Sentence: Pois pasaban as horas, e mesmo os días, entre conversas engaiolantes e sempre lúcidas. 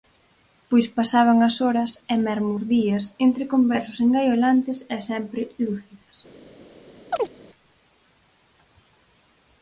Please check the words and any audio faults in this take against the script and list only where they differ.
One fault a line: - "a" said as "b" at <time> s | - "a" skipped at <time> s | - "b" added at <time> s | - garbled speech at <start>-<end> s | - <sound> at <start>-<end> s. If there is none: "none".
- chirp at 7.1-7.3 s